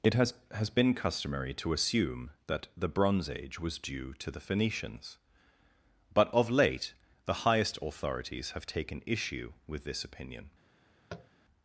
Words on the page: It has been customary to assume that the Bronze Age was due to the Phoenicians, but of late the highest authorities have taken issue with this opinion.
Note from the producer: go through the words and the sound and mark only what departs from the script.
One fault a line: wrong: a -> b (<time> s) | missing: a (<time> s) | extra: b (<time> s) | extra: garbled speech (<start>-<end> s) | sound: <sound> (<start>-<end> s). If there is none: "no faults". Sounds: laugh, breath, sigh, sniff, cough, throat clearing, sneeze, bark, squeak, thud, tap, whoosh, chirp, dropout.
extra: has (0.5 s)
sound: tap (11.1-11.3 s)